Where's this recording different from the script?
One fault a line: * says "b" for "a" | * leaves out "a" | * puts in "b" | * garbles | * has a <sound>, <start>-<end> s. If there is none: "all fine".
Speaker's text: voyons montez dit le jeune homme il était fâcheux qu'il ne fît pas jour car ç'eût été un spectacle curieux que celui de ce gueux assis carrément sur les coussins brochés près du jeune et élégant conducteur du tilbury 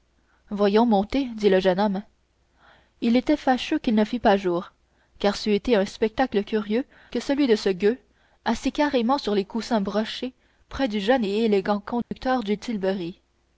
* has a dropout, 12.0-12.1 s